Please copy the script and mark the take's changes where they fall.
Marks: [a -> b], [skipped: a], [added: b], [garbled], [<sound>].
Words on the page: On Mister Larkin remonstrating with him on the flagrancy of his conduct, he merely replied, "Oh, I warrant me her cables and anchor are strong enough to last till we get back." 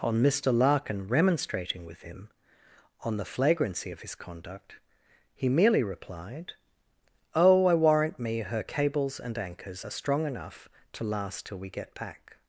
On Mister Larkin remonstrating with him on the flagrancy of his conduct, he merely replied, "Oh, I warrant me her cables and [anchor -> anchors] are strong enough to last till we get back."